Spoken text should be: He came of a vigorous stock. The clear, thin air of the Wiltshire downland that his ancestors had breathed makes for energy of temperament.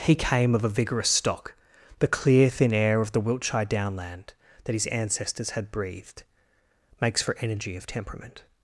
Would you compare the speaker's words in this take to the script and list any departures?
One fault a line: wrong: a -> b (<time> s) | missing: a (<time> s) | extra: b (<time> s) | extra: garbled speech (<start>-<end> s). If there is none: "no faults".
no faults